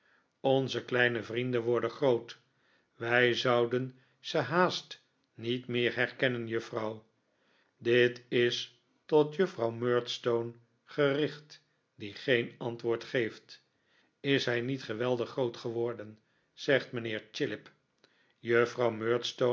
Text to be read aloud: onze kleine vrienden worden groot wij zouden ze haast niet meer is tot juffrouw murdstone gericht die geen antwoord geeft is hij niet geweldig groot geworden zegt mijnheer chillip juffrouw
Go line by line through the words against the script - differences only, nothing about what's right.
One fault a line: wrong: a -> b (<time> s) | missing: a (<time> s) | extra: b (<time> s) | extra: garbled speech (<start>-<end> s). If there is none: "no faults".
extra: herkennen juffrouw dit (6.0 s)